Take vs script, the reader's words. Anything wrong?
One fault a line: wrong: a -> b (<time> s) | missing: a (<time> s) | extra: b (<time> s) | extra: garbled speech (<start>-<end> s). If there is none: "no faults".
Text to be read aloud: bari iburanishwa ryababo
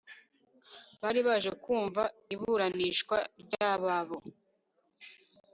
extra: baje kumva (1.3 s)